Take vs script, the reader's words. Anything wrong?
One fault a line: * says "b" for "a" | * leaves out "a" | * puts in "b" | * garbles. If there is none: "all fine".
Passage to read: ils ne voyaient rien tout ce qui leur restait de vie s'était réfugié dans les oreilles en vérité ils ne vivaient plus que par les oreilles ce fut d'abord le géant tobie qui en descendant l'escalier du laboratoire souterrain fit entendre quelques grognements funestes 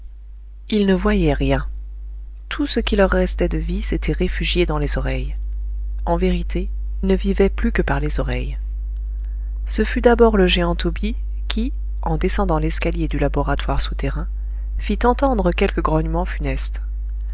* leaves out "ils"